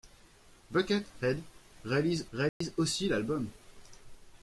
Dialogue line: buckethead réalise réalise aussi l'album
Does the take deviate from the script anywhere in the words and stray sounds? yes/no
yes